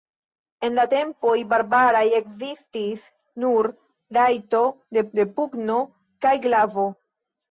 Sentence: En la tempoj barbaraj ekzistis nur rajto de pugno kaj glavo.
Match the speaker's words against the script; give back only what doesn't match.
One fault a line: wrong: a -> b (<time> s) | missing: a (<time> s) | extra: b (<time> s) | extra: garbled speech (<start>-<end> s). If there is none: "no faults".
extra: de (5.2 s)